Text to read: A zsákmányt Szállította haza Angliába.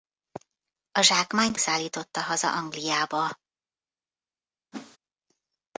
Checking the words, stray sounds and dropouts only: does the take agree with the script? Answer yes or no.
no